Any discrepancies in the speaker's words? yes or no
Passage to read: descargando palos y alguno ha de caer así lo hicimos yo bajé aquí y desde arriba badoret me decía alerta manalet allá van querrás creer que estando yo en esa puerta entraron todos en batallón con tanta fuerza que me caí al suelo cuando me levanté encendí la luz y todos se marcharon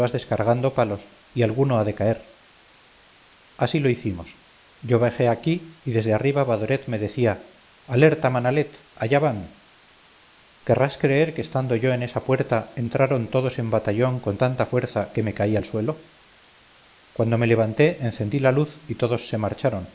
no